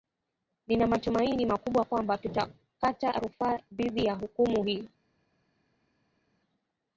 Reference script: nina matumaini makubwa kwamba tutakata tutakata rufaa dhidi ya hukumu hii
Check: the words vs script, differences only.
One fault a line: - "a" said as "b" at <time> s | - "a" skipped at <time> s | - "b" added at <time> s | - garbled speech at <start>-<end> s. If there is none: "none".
- "tutakata" skipped at 3.1 s